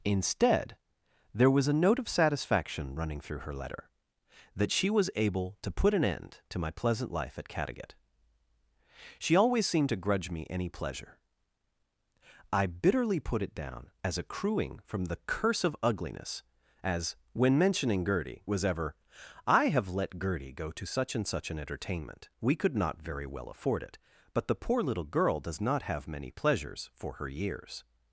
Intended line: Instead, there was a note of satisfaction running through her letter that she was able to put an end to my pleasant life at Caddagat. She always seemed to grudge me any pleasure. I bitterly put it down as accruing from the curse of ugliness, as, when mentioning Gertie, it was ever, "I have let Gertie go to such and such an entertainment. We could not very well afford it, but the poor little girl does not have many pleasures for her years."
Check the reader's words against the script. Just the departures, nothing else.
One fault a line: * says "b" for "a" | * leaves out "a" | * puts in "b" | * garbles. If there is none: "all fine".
* leaves out "it"